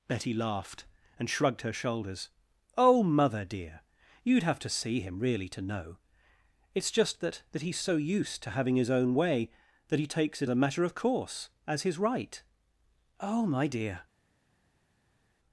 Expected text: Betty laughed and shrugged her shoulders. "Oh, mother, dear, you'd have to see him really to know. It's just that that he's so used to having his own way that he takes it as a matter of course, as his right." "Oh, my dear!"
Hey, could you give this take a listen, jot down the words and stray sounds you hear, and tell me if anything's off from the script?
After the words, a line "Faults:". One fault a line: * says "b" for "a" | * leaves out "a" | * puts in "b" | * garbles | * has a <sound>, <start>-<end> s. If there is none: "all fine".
Betty laughed and shrugged her shoulders. "Oh, mother, dear, you'd have to see him really to know. It's just that that he's so used to having his own way that he takes it a matter of course, as his right." "Oh, my dear!"
Faults:
* leaves out "as"